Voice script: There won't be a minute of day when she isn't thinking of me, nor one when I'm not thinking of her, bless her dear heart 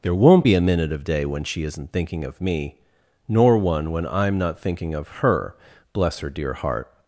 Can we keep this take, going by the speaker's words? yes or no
yes